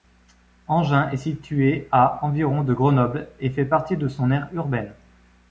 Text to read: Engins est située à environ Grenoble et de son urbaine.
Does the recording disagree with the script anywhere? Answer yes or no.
yes